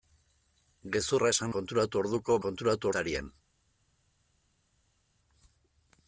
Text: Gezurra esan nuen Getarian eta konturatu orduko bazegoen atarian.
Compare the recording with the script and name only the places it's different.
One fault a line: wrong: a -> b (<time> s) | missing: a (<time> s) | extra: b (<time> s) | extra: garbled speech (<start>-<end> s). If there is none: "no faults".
missing: nuen Getarian eta (1.5 s)
wrong: bazegoen -> konturatu (2.5 s)